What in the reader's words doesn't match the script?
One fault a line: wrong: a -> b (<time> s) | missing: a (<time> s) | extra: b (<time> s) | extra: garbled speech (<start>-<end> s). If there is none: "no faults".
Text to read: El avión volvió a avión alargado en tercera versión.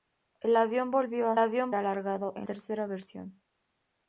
no faults